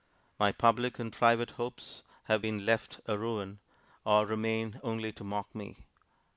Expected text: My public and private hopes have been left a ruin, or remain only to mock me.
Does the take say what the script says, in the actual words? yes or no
yes